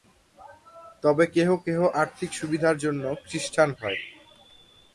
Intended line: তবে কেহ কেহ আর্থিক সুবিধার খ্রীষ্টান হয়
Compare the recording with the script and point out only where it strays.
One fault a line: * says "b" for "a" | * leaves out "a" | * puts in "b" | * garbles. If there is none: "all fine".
* puts in "জন্য"